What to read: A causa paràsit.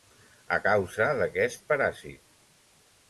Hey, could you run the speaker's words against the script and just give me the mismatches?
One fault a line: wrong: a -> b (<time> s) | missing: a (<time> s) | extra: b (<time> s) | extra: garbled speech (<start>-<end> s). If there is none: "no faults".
extra: d'aquest (1.2 s)